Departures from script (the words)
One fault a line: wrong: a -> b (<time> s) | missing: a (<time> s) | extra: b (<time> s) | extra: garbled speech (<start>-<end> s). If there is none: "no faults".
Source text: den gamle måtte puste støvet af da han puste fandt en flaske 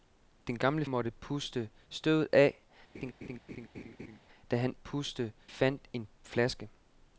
no faults